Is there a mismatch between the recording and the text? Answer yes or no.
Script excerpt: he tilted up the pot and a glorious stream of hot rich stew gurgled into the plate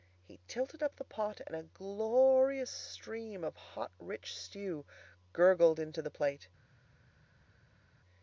no